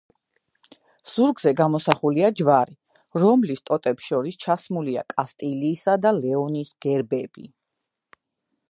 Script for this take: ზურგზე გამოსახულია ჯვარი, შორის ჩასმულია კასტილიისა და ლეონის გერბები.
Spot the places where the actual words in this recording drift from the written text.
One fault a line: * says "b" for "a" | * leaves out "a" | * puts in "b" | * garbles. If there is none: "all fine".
* puts in "რომლის ტოტებს"